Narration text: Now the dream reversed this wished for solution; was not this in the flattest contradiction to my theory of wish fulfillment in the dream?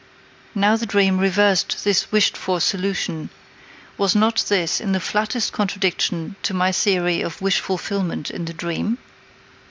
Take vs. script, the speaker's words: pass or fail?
pass